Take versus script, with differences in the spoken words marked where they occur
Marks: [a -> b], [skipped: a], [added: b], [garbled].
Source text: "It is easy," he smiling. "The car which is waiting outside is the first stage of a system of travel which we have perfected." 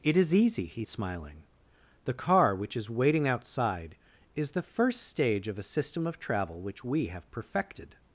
"It is easy," he smiling. "The car which is waiting outside is the first stage of a system of travel which we have perfected."